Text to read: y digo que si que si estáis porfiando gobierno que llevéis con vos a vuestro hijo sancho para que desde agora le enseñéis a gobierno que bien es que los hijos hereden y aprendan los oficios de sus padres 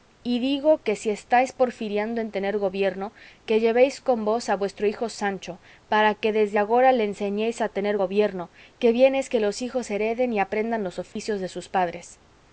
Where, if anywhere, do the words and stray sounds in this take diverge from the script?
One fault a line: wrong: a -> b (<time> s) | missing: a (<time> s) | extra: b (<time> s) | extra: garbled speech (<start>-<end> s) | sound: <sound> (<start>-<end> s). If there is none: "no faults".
wrong: que si estáis porfiando -> estáis porfiando en tener (1.1 s)
extra: tener (7.7 s)
sound: dropout (11.1-11.2 s)